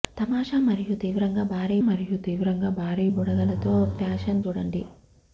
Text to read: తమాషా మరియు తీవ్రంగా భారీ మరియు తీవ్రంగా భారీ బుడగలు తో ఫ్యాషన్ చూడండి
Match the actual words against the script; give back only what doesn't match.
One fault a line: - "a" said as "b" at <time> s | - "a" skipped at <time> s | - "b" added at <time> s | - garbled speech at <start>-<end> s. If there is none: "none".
none